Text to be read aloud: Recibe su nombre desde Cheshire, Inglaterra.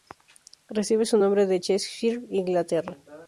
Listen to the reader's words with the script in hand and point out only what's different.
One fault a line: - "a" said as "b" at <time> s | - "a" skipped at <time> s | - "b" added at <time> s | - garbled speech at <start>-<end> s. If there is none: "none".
- "desde" said as "de" at 1.4 s